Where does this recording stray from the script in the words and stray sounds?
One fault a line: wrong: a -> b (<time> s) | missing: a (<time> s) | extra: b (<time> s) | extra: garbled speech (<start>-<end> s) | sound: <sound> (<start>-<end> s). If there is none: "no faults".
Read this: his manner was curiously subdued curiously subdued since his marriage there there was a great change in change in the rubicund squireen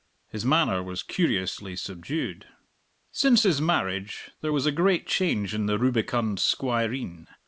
missing: curiously subdued (2.5 s)
missing: there (4.5 s)
missing: change in (5.7 s)